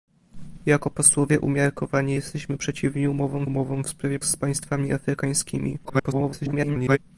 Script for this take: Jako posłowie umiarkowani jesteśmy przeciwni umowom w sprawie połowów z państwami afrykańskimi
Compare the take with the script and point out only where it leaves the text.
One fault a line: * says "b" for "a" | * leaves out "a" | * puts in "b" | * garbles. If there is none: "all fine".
* puts in "umowom"
* leaves out "połowów"
* garbles